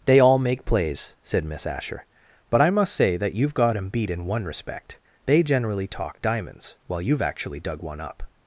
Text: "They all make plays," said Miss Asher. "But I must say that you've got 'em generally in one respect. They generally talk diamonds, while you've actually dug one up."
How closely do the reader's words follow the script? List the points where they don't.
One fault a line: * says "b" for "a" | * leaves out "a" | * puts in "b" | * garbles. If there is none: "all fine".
* says "beat" for "generally"